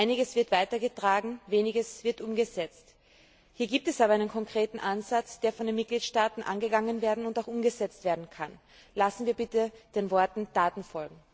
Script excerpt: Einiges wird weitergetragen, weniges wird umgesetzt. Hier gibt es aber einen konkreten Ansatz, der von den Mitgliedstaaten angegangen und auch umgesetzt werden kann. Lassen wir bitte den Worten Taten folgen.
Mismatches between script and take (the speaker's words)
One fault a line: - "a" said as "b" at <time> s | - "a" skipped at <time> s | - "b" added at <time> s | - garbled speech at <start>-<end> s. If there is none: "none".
none